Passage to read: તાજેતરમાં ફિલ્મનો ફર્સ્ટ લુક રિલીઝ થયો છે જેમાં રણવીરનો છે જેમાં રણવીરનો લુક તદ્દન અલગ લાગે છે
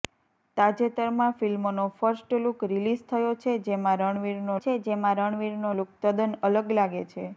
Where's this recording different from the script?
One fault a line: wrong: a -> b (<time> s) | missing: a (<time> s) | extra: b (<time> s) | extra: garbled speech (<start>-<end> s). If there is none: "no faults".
no faults